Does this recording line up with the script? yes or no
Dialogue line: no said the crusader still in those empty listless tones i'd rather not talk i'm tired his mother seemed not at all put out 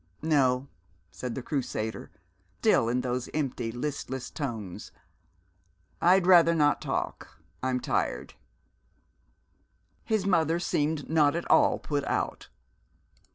yes